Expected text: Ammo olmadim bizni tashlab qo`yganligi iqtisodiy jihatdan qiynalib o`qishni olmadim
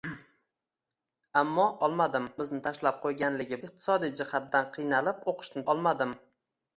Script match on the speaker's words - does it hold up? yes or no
yes